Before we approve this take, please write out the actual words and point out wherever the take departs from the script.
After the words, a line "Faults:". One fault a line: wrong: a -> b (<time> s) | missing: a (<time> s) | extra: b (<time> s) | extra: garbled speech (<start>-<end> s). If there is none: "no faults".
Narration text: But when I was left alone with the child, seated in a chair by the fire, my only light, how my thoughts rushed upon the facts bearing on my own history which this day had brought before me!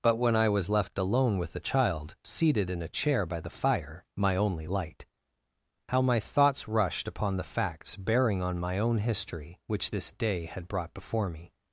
But when I was left alone with the child, seated in a chair by the fire, my only light, how my thoughts rushed upon the facts bearing on my own history which this day had brought before me!
Faults:
no faults